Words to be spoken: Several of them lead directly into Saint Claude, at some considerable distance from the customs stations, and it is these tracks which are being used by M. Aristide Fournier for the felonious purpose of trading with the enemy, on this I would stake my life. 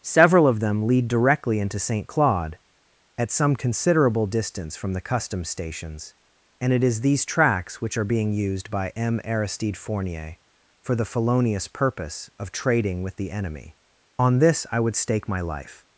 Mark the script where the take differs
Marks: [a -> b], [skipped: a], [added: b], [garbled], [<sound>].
Several of them lead directly into Saint Claude, at some considerable distance from the customs stations, and it is these tracks which are being used by M. Aristide Fournier for the felonious purpose of trading with the enemy, on this I would stake my life.